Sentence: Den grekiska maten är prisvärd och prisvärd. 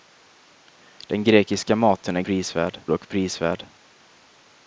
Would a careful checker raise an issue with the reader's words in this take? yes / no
no